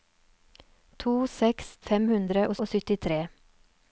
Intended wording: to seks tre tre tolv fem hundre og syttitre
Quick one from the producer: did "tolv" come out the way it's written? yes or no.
no